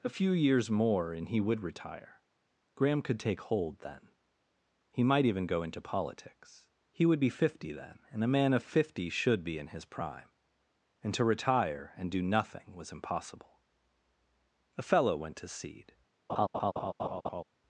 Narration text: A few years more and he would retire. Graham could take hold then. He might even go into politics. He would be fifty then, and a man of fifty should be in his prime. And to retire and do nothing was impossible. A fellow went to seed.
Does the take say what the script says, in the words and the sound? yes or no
no